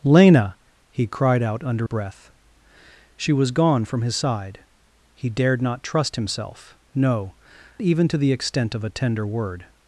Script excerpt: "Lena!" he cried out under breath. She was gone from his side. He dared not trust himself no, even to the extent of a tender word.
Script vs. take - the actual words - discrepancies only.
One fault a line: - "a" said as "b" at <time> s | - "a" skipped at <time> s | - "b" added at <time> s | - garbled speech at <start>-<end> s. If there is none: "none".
none